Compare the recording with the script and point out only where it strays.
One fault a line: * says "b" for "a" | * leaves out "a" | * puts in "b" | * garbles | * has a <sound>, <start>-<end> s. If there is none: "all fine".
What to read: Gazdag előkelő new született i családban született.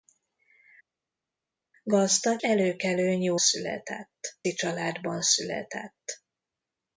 all fine